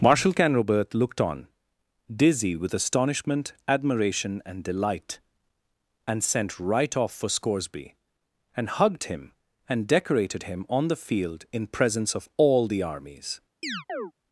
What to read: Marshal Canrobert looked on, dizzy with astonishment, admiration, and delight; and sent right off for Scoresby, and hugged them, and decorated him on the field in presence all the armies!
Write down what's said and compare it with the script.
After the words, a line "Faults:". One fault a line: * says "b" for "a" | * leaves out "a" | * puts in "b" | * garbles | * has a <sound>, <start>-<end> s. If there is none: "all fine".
Marshal Canrobert looked on, dizzy with astonishment, admiration, and delight; and sent right off for Scoresby, and hugged him, and decorated him on the field in presence of all the armies!
Faults:
* says "him" for "them"
* puts in "of"
* has a chirp, 13.6-14.1 s